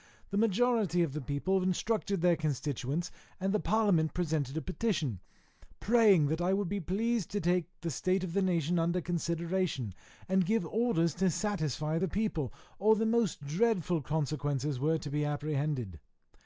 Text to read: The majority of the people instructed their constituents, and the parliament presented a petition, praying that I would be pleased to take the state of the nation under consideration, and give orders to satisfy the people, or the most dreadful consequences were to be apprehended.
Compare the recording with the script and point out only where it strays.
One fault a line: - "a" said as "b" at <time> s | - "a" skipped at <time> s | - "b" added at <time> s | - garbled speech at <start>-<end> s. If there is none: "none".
none